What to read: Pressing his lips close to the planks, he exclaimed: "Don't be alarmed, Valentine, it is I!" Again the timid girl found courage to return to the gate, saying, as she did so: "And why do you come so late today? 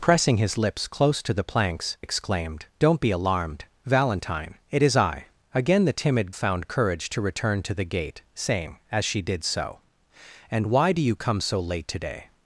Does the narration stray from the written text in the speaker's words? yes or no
yes